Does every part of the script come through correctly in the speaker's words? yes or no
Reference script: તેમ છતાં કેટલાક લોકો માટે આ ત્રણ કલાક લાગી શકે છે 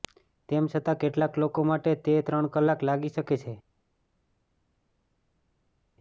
no